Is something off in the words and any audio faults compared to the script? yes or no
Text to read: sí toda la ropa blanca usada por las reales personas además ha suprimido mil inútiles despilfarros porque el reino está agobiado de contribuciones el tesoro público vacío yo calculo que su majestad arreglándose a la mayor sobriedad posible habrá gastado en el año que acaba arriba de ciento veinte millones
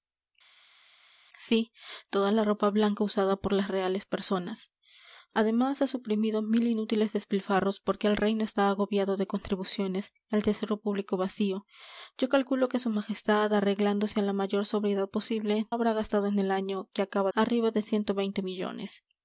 no